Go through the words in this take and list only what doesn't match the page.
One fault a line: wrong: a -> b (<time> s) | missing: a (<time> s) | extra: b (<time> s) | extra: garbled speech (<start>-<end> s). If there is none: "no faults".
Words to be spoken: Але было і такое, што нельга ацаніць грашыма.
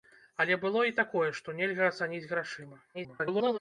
extra: garbled speech (2.9-3.6 s)